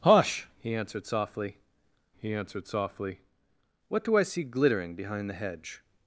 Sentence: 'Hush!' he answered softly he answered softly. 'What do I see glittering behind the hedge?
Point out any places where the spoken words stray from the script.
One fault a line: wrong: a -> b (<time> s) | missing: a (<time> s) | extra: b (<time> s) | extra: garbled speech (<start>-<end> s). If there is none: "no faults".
no faults